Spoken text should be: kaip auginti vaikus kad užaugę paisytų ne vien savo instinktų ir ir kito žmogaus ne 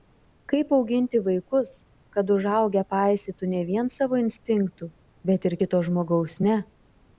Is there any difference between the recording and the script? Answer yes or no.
yes